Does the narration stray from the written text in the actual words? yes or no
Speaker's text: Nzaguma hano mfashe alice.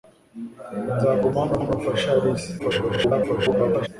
yes